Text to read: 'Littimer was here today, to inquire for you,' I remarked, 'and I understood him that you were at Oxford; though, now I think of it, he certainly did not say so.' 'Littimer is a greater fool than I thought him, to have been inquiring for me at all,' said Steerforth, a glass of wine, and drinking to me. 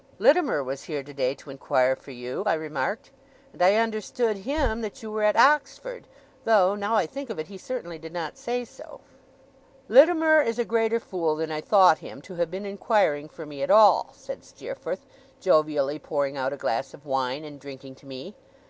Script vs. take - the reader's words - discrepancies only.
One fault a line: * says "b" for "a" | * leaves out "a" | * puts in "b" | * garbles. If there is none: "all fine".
* puts in "jovially pouring out"